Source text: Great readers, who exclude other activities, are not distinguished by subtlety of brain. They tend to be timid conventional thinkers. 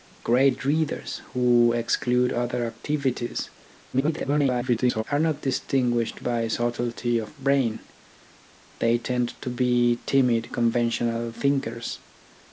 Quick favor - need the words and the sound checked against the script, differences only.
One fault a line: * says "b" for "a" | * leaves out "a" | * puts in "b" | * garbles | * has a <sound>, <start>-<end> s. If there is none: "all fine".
* garbles